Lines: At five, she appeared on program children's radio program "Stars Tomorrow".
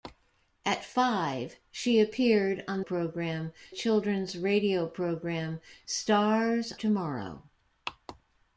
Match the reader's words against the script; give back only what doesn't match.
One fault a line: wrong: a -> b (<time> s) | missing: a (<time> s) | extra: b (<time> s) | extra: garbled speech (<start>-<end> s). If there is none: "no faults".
no faults